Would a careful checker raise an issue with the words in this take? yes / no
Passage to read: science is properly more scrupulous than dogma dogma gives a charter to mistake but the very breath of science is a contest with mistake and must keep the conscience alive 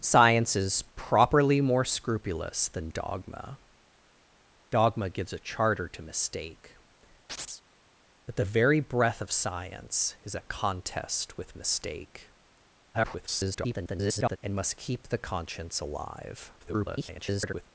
yes